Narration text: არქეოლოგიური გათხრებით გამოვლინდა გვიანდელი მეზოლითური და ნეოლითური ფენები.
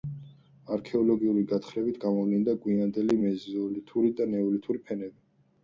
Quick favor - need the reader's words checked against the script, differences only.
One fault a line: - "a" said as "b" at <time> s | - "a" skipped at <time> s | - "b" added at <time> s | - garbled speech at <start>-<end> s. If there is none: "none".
none